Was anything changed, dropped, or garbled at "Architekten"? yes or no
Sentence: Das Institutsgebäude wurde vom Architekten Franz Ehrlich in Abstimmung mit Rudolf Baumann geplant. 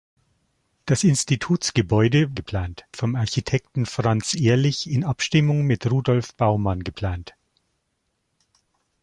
no